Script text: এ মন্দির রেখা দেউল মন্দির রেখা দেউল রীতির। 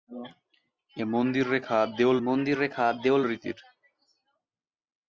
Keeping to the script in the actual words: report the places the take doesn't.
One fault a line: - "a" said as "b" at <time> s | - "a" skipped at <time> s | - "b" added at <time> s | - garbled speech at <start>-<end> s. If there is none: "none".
none